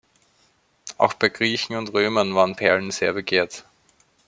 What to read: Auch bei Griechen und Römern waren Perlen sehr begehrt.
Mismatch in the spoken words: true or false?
false